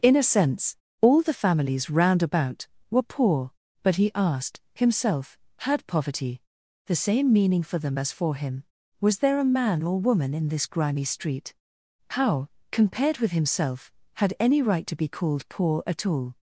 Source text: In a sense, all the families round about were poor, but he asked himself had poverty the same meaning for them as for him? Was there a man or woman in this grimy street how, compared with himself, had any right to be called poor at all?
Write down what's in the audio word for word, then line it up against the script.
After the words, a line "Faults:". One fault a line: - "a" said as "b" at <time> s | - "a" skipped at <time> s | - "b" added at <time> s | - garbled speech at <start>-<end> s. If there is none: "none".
In a sense, all the families round about were poor, but he asked himself had poverty the same meaning for them as for him? Was there a man or woman in this grimy street how, compared with himself, had any right to be called poor at all?
Faults:
none